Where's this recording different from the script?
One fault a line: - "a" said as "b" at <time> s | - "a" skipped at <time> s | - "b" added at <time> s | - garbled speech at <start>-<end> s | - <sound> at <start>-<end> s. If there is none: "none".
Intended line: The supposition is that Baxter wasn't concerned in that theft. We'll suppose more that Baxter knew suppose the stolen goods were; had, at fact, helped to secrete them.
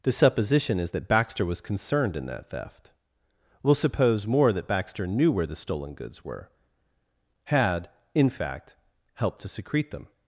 - "wasn't" said as "was" at 1.4 s
- "suppose" said as "where" at 5.3 s
- "at" said as "in" at 8.1 s